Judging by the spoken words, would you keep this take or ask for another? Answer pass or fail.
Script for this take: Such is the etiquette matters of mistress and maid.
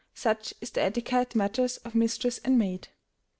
pass